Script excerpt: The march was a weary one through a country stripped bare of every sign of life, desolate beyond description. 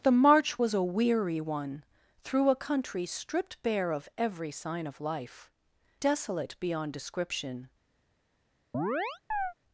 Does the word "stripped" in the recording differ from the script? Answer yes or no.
no